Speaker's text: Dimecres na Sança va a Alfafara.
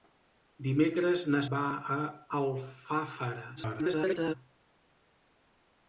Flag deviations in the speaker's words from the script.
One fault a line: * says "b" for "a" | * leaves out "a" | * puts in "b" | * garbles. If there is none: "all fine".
* leaves out "Sança"
* garbles